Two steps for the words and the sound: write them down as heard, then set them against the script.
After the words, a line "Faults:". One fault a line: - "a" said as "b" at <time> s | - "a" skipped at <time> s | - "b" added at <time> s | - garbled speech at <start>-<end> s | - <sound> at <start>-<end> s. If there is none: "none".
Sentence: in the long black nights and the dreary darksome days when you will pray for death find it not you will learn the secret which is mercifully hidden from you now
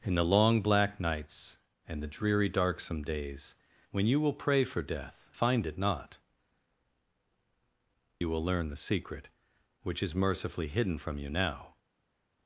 in the long black nights and the dreary darksome days when you will pray for death find it not you will learn the secret which is mercifully hidden from you now
Faults:
none